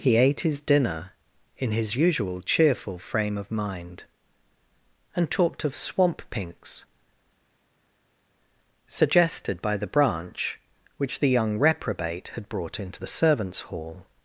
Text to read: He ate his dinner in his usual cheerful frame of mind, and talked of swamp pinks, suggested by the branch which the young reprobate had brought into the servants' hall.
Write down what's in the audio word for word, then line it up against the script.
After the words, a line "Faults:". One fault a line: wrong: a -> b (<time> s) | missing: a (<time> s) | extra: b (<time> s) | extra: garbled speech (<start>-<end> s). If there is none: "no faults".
He ate his dinner in his usual cheerful frame of mind, and talked of swamp pinks, suggested by the branch which the young reprobate had brought into the servants' hall.
Faults:
no faults